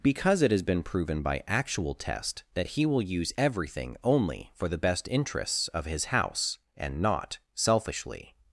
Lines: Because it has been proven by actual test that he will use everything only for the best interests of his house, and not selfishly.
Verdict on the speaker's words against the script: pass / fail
pass